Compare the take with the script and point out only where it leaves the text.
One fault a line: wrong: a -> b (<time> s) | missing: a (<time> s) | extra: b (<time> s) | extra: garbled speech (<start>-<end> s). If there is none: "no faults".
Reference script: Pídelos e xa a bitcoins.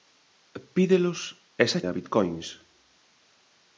no faults